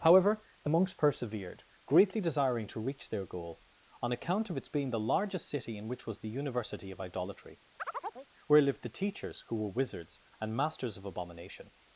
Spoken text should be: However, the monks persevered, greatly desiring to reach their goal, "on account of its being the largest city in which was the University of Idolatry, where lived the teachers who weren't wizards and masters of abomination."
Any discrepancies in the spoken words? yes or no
yes